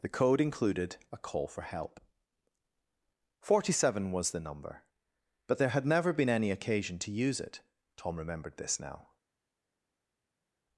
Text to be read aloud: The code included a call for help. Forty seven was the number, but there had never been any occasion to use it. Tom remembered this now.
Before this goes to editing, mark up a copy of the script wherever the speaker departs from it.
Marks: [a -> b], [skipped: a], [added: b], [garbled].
The code included a call for help. Forty seven was the number, but there had never been any occasion to use it. Tom remembered this now.